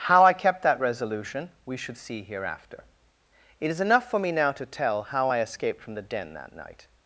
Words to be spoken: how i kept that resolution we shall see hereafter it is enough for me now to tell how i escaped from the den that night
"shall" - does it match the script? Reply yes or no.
no